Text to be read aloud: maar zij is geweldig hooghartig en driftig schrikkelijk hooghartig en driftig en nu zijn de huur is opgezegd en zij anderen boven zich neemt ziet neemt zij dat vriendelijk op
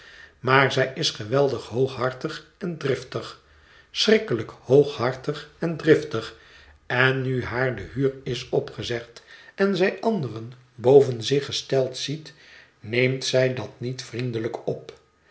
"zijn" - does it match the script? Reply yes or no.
no